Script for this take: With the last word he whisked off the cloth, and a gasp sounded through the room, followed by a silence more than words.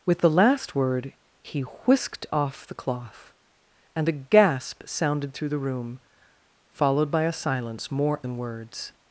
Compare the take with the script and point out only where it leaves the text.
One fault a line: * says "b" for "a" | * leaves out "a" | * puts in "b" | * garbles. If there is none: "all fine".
all fine